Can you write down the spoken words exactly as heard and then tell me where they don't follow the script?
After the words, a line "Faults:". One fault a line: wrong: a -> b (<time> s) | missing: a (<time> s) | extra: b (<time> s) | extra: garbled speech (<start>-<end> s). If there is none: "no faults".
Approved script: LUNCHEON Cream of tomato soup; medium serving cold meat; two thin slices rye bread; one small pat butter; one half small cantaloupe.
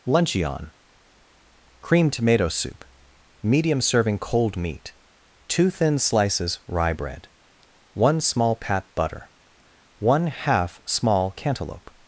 LUNCHEON Cream tomato soup; medium serving cold meat; two thin slices rye bread; one small pat butter; one half small cantaloupe.
Faults:
missing: of (2.1 s)